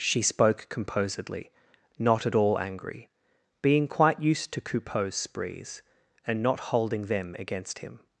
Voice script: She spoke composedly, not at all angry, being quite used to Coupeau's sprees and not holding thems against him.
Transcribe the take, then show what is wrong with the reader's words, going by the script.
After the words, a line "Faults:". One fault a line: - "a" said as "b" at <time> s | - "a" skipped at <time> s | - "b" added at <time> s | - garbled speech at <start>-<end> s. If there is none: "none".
She spoke composedly, not at all angry, being quite used to Coupeau's sprees and not holding them against him.
Faults:
- "thems" said as "them" at 7.0 s